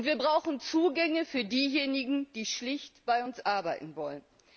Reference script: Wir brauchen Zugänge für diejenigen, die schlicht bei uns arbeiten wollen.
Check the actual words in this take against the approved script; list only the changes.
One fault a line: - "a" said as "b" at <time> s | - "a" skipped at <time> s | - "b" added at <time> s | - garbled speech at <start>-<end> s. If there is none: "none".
none